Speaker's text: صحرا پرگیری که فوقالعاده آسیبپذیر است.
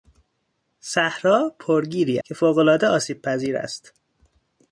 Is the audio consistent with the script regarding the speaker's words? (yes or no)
yes